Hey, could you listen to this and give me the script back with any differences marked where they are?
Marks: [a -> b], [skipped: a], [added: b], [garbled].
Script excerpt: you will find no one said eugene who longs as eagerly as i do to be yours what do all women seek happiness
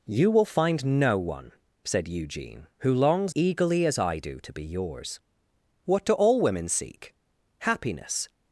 you will find no one said eugene who longs [skipped: as] eagerly as i do to be yours what do all women seek happiness